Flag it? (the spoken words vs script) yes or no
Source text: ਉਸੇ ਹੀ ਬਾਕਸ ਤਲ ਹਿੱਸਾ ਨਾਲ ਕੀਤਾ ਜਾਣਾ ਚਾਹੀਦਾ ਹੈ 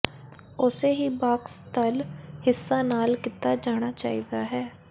no